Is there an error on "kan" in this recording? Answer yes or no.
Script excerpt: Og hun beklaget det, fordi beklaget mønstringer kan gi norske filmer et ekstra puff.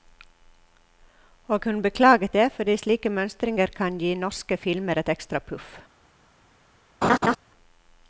no